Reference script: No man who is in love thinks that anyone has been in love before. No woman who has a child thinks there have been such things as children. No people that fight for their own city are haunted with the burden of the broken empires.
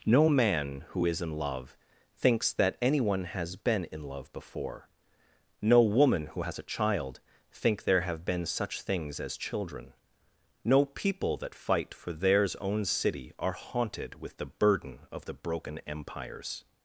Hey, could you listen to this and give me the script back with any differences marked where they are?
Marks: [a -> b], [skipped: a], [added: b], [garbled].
No man who is in love thinks that anyone has been in love before. No woman who has a child [thinks -> think] there have been such things as children. No people that fight for [their -> theirs] own city are haunted with the burden of the broken empires.